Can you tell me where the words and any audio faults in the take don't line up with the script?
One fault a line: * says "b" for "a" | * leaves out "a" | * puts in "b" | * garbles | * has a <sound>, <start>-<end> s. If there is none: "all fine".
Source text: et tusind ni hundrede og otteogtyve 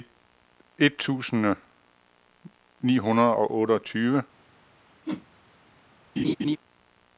* has a whoosh, 5.1-5.3 s
* has a laugh, 6.2-6.6 s